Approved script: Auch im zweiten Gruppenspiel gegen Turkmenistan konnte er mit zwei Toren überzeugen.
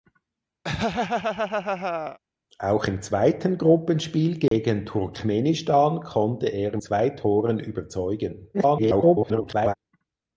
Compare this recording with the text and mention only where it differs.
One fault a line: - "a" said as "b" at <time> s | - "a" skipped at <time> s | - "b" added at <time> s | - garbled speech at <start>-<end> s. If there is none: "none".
- "mit" skipped at 6.8 s
- garbled speech at 8.5-9.7 s